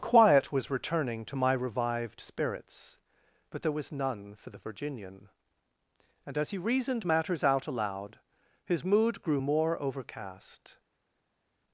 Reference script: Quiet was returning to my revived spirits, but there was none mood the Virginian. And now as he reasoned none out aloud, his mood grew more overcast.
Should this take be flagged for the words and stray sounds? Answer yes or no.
yes